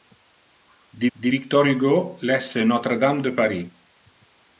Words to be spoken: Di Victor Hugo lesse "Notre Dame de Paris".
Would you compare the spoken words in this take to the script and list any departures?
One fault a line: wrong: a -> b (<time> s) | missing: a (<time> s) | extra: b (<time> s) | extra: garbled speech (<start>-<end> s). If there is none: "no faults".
extra: di (1.1 s)